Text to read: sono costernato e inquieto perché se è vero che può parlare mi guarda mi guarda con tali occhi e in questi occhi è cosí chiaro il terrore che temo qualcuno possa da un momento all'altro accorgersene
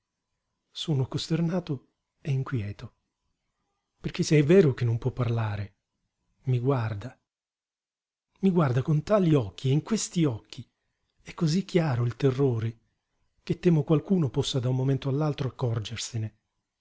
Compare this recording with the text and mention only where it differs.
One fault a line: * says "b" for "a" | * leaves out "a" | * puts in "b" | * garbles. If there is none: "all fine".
* puts in "non"